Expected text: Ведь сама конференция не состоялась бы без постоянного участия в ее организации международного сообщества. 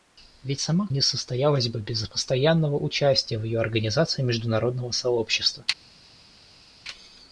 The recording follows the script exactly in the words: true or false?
false